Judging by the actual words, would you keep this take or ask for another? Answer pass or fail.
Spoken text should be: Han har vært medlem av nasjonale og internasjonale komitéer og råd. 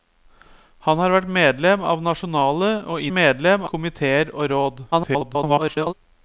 fail